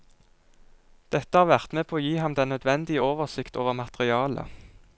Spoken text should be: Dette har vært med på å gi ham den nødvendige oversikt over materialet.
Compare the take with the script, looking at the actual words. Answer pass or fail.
pass